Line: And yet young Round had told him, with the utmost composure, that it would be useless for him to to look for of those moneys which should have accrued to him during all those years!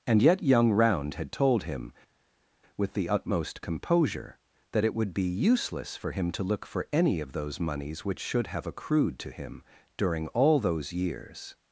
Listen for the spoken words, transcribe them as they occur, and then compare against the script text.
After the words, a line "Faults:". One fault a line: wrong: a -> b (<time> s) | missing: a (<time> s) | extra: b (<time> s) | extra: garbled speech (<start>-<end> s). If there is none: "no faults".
And yet young Round had told him, with the utmost composure, that it would be useless for him to look for any of those moneys which should have accrued to him during all those years!
Faults:
missing: to (6.4 s)
extra: any (6.9 s)